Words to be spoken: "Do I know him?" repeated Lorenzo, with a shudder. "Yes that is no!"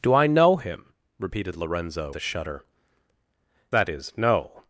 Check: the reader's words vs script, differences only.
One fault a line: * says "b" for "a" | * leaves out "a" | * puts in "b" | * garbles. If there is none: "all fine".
* leaves out "with"
* leaves out "Yes"